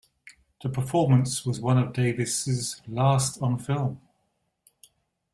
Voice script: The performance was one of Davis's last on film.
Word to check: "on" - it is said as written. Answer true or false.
true